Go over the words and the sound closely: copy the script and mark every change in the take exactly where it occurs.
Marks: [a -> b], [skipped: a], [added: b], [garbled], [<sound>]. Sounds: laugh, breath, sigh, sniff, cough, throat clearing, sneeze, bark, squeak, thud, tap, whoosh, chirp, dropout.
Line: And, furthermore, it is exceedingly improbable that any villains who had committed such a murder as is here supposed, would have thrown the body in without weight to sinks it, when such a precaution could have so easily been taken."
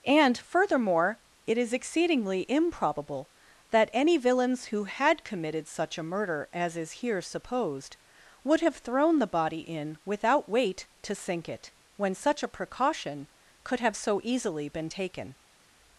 And, furthermore, it is exceedingly improbable that any villains who had committed such a murder as is here supposed, would have thrown the body in without weight to [sinks -> sink] it, when such a precaution could have so easily been taken."